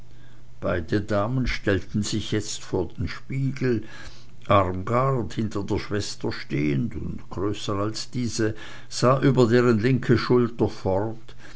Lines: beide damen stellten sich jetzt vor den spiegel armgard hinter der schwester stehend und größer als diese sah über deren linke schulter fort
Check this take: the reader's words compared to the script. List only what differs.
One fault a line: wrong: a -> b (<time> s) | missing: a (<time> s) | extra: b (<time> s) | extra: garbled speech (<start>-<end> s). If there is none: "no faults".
no faults